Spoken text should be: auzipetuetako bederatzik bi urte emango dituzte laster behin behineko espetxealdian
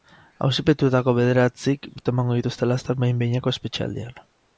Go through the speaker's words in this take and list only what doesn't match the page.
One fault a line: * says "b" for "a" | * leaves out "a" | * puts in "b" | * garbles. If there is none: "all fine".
* leaves out "bi"